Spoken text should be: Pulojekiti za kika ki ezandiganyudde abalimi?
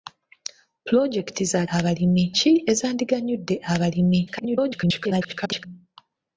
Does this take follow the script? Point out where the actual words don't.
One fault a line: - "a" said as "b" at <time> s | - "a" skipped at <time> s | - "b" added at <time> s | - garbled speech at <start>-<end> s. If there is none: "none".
- "kika" said as "abalimi" at 1.8 s
- garbled speech at 4.3-5.7 s